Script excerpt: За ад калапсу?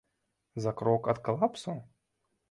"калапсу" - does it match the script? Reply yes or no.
yes